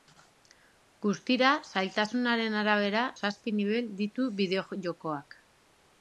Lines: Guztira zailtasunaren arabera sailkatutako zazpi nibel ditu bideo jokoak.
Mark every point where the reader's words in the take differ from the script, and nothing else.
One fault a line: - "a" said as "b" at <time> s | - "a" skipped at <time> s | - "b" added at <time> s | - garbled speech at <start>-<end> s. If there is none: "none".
- "sailkatutako" skipped at 3.0 s